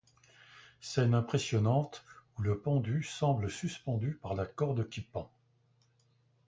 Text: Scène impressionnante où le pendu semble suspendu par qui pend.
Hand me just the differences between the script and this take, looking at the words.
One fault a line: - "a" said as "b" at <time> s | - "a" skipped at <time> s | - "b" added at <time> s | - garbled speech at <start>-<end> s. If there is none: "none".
- "la corde" added at 4.3 s